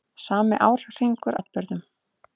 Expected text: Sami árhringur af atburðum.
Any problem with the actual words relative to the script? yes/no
yes